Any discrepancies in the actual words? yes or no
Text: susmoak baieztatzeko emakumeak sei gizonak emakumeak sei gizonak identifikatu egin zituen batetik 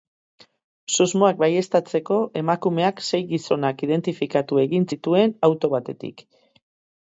yes